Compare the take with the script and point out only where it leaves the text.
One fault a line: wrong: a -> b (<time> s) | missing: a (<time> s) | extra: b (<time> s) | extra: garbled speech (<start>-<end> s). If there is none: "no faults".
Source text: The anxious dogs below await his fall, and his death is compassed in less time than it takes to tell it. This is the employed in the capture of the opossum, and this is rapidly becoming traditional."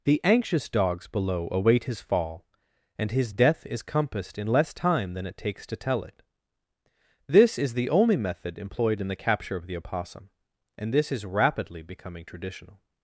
extra: only method (7.9 s)